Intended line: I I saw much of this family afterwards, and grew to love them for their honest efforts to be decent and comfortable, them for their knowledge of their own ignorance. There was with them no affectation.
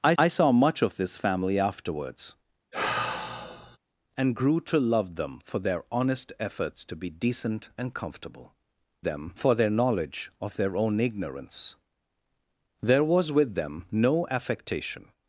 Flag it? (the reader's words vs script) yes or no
no